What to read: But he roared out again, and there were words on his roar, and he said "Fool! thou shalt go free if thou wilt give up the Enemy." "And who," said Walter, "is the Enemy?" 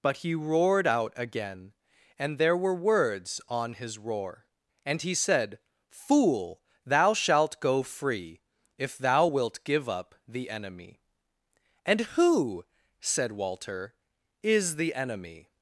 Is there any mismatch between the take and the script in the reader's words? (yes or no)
no